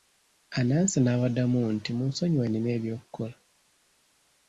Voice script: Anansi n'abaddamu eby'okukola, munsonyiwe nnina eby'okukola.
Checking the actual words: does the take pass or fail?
fail